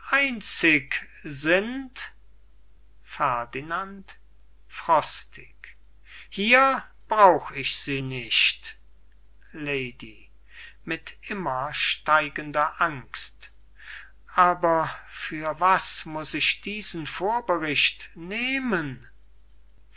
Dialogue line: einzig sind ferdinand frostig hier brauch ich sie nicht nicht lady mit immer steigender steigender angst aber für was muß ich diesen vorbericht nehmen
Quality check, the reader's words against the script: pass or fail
fail